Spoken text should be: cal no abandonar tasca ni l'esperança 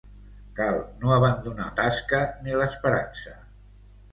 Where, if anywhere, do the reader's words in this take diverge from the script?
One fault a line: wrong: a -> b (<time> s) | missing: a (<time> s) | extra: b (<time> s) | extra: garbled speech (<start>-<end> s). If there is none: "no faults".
no faults